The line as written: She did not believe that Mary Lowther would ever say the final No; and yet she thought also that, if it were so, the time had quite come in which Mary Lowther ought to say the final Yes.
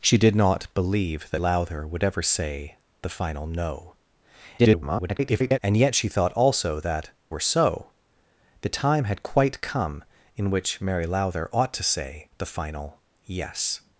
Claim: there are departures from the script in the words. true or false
true